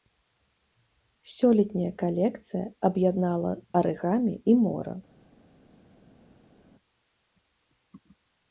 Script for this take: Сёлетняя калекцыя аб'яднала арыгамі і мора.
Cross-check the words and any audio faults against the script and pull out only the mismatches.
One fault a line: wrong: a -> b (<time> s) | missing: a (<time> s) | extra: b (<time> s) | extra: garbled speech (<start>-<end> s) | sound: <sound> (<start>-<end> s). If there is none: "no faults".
no faults